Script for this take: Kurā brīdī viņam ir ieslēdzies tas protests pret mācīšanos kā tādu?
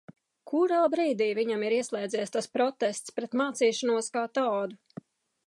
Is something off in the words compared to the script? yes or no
no